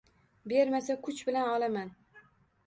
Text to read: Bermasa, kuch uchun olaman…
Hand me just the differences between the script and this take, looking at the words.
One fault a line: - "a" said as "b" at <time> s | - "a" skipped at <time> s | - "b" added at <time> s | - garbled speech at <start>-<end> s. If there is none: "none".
- "uchun" said as "bilan" at 1.3 s